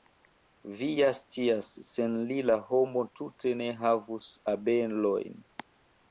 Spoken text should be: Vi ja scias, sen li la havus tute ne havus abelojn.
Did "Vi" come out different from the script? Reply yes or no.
no